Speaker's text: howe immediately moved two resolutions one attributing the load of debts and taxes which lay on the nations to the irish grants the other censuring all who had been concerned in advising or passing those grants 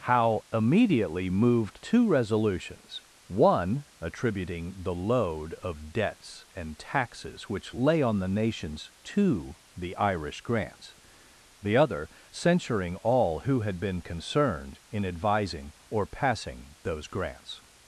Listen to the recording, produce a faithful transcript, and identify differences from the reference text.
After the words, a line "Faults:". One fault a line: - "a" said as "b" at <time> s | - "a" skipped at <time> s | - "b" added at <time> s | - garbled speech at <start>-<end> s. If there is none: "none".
howe immediately moved two resolutions one attributing the load of debts and taxes which lay on the nations to the irish grants the other censuring all who had been concerned in advising or passing those grants
Faults:
none